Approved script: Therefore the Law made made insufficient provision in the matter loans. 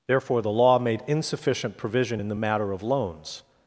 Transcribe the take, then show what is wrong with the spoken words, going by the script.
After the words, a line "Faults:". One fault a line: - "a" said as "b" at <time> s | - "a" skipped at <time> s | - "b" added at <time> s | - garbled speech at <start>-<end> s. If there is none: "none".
Therefore the Law made insufficient provision in the matter of loans.
Faults:
- "made" skipped at 1.0 s
- "of" added at 2.7 s